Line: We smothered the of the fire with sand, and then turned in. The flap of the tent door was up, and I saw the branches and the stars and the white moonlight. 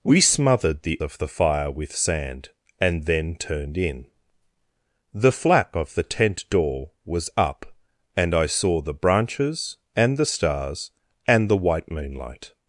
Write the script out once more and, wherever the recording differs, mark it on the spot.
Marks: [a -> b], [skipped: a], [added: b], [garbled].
We smothered the of the fire with sand, and then turned in. The flap of the tent door was up, and I saw the branches and the stars and the white moonlight.